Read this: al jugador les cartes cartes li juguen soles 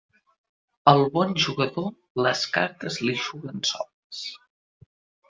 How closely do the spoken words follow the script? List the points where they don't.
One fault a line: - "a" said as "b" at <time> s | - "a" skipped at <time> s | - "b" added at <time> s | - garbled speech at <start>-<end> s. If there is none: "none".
- "bon" added at 1.2 s
- "cartes" skipped at 3.0 s